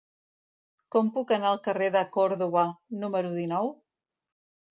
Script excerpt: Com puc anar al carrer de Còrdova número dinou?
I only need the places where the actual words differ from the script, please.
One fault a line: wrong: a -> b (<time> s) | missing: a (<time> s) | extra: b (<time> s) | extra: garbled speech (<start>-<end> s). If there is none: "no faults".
no faults